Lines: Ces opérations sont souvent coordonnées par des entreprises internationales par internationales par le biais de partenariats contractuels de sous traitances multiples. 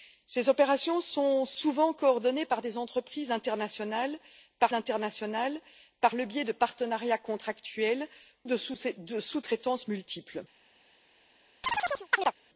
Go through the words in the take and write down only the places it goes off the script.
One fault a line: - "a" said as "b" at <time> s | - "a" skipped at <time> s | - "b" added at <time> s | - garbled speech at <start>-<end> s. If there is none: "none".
none